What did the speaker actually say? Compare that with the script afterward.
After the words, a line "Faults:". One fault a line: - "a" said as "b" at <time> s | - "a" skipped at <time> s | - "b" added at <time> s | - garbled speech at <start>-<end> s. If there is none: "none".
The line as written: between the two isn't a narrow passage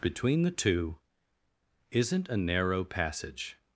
between the two isn't a narrow passage
Faults:
none